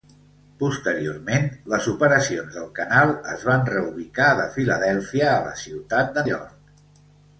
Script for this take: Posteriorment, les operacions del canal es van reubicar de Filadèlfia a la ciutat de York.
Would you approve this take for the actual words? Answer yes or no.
yes